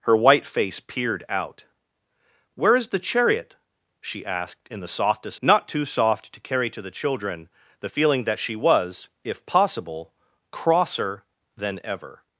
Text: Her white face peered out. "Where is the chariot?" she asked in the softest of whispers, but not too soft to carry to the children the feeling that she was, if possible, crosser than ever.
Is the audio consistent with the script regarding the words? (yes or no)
no